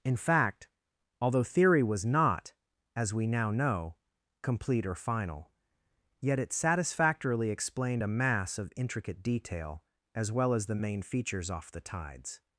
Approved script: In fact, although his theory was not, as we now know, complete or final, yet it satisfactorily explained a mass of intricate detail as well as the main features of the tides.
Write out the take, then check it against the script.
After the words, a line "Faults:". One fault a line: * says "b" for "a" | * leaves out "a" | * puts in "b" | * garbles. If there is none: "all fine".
In fact, although theory was not, as we now know, complete or final, yet it satisfactorily explained a mass of intricate detail as well as the main features off the tides.
Faults:
* leaves out "his"
* says "off" for "of"